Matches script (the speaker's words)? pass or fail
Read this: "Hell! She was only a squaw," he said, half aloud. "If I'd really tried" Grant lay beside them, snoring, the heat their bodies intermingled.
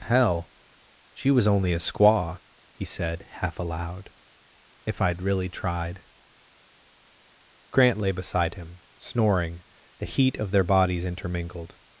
fail